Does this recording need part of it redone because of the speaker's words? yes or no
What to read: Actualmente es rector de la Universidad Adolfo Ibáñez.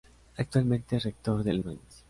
yes